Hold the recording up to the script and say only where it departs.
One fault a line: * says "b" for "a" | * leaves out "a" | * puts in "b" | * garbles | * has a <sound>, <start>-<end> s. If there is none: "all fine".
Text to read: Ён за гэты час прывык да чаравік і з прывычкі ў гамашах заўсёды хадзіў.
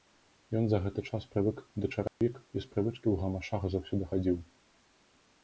* has a dropout, 2.1-2.2 s